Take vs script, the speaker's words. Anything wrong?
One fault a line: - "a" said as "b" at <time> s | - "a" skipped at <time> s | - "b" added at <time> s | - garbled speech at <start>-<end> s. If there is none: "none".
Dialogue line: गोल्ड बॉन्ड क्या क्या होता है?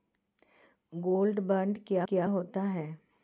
none